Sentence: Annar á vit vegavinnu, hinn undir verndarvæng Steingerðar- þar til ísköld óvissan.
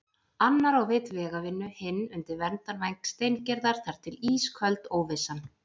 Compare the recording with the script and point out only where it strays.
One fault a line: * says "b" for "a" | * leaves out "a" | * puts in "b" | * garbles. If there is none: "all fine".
all fine